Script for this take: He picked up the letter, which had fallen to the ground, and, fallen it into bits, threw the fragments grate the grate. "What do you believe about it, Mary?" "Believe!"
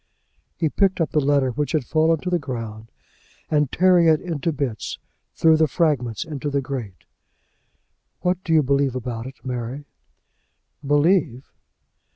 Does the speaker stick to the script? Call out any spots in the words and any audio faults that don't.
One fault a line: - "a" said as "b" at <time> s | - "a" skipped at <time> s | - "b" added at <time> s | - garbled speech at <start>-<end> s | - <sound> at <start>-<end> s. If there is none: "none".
- "fallen" said as "tearing" at 3.7 s
- "grate" said as "into" at 6.2 s